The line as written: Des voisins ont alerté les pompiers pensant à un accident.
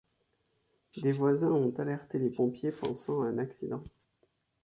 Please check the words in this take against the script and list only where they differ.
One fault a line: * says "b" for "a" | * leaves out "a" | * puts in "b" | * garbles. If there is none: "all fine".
all fine